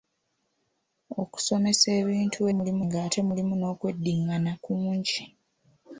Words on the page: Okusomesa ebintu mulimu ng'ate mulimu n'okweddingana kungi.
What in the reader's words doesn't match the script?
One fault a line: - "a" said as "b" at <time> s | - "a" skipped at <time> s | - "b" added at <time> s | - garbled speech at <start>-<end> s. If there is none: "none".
none